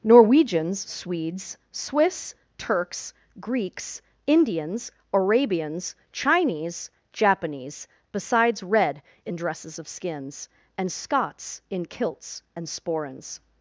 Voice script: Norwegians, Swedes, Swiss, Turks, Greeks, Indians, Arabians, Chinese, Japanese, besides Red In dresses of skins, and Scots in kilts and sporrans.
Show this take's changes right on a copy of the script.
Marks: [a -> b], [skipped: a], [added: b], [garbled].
Norwegians, Swedes, Swiss, Turks, Greeks, Indians, Arabians, Chinese, Japanese, besides Red In dresses of skins, and Scots in kilts and sporrans.